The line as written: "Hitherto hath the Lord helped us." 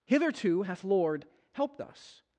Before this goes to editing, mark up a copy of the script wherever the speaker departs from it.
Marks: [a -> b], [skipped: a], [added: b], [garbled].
"Hitherto hath [skipped: the] Lord helped us."